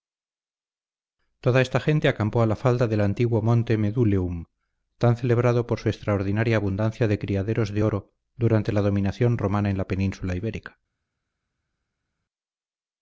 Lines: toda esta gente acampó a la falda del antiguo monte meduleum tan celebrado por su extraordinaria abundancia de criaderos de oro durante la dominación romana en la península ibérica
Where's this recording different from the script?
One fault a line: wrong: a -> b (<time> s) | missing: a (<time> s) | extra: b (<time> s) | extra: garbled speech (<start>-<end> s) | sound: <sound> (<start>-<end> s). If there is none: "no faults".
no faults